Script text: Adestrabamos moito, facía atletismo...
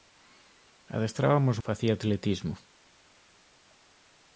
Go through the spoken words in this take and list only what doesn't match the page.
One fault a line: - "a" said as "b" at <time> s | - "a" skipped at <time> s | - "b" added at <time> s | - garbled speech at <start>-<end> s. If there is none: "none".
- "moito" skipped at 1.6 s